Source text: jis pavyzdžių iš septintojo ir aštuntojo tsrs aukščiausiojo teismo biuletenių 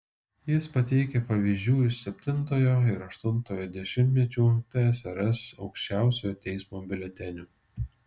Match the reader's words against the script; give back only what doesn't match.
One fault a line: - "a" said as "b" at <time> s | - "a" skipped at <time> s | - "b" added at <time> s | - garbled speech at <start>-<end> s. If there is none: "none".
- "pateikia" added at 0.8 s
- "dešimtmečių" added at 3.8 s